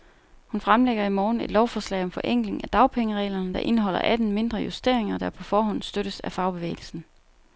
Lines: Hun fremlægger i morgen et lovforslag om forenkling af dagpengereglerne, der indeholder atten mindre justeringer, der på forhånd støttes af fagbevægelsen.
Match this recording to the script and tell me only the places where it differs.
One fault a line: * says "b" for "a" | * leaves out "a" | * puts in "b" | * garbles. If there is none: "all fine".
all fine